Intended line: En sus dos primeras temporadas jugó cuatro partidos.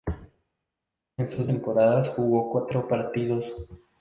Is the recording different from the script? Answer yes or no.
yes